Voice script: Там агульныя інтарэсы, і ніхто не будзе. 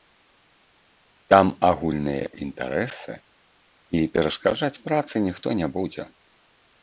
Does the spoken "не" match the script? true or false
true